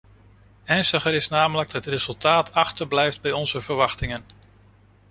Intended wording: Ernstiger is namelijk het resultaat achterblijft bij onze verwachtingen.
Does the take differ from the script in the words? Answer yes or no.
no